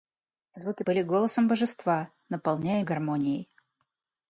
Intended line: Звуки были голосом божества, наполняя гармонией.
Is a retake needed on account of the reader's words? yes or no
no